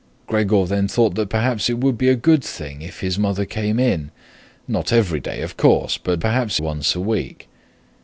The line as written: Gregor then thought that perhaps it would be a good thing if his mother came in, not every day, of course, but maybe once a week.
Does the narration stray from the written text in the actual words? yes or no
yes